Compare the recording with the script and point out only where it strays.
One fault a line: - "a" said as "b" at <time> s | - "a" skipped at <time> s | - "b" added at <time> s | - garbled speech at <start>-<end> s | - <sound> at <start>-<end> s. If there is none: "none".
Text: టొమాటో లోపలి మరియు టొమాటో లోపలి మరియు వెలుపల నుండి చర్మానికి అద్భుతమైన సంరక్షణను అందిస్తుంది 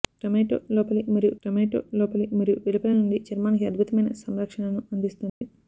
- dropout at 5.3-5.4 s